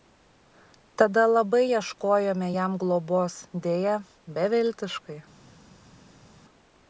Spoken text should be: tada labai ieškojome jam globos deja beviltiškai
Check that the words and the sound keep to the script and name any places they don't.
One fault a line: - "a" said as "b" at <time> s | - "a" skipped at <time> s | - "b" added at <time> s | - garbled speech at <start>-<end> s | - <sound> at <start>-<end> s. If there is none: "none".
none